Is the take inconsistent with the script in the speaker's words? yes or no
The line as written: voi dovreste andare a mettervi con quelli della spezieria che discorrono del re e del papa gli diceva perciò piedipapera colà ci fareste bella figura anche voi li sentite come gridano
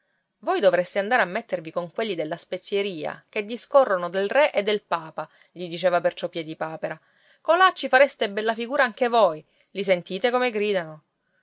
no